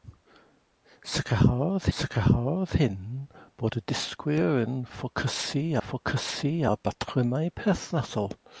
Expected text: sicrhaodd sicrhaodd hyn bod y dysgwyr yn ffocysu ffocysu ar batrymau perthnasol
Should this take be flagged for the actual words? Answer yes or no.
no